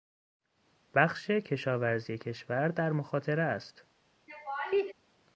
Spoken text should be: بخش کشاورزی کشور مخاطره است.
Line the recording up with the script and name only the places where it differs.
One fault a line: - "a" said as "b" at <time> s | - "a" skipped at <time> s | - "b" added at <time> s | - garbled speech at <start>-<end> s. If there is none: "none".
- "در" added at 2.7 s